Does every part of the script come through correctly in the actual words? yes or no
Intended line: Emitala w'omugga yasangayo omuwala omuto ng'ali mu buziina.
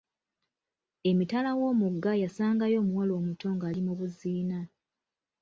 yes